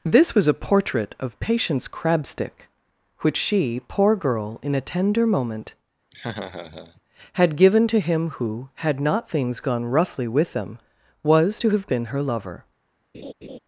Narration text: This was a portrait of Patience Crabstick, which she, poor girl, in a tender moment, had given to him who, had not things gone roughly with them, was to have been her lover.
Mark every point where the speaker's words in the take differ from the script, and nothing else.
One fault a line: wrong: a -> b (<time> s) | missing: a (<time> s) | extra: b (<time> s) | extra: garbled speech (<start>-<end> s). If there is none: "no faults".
no faults